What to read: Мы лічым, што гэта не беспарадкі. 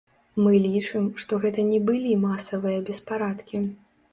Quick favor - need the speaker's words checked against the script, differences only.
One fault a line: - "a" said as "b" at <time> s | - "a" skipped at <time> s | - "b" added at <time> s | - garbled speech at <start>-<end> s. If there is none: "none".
- "былі масавыя" added at 1.9 s